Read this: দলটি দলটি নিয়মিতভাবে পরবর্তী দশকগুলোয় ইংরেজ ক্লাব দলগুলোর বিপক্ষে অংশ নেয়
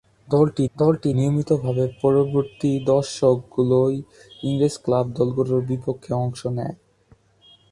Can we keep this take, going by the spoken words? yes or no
yes